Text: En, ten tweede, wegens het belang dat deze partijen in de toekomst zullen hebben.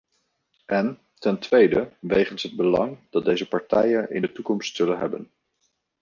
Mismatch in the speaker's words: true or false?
false